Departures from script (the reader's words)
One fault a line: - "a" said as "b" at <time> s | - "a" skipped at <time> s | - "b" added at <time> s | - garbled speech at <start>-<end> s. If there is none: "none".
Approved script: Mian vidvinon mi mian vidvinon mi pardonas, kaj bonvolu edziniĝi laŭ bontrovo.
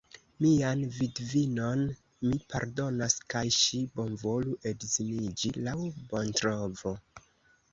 - "mian vidvinon mi" skipped at 2.4 s
- "ŝi" added at 3.6 s